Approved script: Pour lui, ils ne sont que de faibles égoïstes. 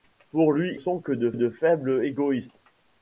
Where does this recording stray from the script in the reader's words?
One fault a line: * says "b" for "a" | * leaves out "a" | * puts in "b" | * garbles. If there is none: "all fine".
* leaves out "ils ne"
* puts in "de"